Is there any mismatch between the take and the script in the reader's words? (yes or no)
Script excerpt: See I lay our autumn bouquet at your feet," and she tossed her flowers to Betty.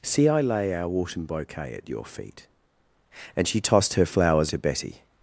no